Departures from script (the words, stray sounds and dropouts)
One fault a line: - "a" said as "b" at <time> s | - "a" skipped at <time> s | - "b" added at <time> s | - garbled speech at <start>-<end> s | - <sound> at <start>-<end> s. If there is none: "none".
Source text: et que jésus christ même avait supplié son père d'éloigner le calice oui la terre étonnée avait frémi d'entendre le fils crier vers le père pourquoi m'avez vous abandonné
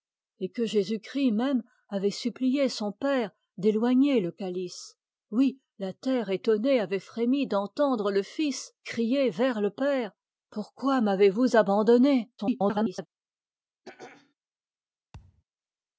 - garbled speech at 12.4-13.1 s
- throat clearing at 13.8-14.3 s
- thud at 15.1-15.4 s